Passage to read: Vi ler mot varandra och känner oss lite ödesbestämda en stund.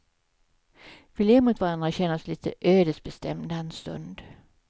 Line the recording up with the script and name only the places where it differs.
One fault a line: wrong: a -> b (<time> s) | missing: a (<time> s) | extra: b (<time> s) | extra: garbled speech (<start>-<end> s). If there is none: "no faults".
no faults